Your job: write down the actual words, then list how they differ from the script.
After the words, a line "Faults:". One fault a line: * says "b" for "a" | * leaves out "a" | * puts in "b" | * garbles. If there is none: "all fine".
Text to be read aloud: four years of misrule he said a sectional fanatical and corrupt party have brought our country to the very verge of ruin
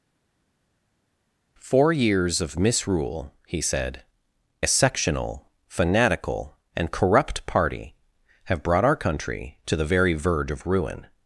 four years of misrule he said a sectional fanatical and corrupt party have brought our country to the very verge of ruin
Faults:
all fine